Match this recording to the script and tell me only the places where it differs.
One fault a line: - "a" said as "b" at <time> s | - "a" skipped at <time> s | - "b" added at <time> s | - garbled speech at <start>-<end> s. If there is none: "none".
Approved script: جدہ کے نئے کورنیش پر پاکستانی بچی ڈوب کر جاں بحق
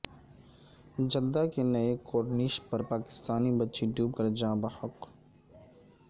none